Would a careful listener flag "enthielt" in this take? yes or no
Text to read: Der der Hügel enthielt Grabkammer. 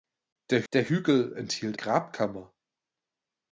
no